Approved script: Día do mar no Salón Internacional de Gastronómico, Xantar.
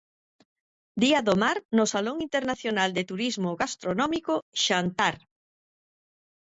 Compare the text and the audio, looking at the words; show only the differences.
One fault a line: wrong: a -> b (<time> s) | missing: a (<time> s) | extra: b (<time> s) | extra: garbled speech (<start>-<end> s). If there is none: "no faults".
extra: Turismo (3.1 s)